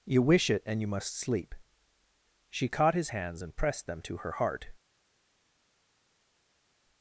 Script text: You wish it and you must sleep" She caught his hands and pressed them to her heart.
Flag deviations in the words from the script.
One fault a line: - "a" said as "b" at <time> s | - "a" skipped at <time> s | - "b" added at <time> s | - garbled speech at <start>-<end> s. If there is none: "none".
none